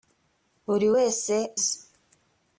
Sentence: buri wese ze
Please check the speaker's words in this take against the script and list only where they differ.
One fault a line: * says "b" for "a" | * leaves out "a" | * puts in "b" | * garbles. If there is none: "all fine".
all fine